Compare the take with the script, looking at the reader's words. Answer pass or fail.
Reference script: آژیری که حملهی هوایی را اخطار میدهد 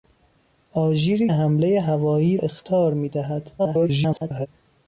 fail